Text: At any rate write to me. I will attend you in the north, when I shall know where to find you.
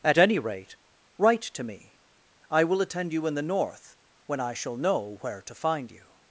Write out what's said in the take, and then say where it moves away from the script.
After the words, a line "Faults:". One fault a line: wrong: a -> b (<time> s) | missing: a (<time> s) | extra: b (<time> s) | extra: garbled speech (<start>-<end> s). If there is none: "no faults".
At any rate write to me. I will attend you in the north, when I shall know where to find you.
Faults:
no faults